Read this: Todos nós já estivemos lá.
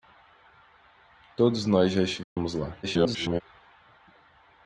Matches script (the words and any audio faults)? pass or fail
fail